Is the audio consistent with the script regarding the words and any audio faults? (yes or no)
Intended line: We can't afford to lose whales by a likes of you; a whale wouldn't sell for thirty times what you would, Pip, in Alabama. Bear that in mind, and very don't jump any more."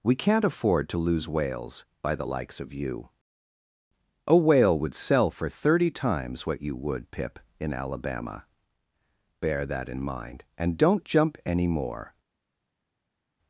no